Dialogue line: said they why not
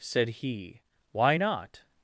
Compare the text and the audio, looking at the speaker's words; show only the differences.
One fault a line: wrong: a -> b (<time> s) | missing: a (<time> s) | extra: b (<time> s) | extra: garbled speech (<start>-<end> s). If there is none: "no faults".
wrong: they -> he (0.3 s)